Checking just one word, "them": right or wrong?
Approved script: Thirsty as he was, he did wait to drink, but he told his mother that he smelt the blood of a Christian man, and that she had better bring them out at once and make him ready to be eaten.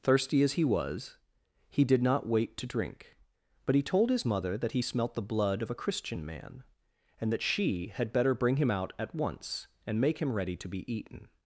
wrong